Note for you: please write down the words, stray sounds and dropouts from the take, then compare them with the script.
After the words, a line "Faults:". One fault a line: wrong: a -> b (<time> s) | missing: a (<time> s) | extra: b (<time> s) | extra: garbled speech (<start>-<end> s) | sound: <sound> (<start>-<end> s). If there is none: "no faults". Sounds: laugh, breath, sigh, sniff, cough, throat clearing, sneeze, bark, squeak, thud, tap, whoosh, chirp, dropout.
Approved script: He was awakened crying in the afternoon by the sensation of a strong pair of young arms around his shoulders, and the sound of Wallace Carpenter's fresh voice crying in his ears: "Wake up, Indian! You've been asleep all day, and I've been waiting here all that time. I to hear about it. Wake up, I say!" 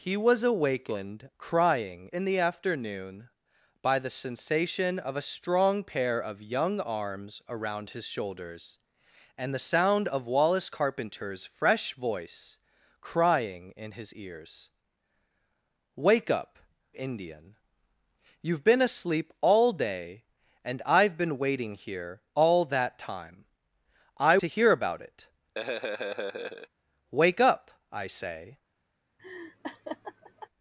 He was awakened crying in the afternoon by the sensation of a strong pair of young arms around his shoulders, and the sound of Wallace Carpenter's fresh voice crying in his ears: "Wake up, Indian! You've been asleep all day, and I've been waiting here all that time. I to hear about it. Wake up, I say!"
Faults:
sound: laugh (25.6-26.7 s)
sound: laugh (29.2-30.5 s)